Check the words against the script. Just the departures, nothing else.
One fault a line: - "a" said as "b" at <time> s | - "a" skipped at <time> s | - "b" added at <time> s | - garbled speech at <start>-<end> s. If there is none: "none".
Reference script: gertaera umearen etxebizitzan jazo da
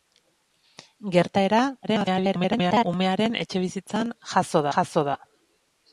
- garbled speech at 1.8-2.9 s
- "jazo" added at 4.8 s